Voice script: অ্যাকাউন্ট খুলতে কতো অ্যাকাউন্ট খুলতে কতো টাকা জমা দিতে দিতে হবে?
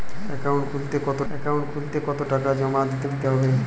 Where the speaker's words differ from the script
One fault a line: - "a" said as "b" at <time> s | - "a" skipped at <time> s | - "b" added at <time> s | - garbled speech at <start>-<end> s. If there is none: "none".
none